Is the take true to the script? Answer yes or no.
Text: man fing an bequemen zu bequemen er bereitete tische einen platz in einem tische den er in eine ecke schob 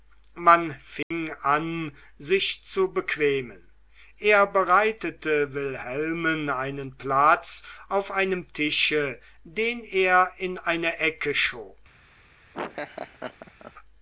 no